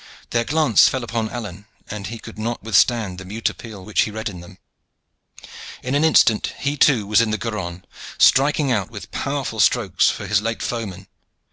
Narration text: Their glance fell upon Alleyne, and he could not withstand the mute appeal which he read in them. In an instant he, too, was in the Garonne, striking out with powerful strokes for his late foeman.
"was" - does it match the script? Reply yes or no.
yes